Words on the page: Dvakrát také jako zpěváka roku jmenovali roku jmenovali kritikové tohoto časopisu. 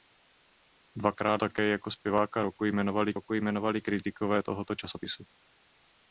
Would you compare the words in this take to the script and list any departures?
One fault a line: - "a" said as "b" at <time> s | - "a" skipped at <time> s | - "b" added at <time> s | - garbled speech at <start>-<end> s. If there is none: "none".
none